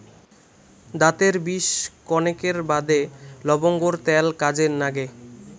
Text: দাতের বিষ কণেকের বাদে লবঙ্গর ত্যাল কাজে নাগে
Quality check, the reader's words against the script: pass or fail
pass